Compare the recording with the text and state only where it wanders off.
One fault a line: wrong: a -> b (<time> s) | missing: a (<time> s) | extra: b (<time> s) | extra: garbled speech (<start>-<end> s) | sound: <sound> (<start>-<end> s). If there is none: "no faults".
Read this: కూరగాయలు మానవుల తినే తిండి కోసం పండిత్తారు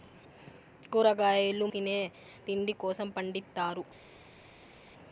missing: మానవుల (1.6 s)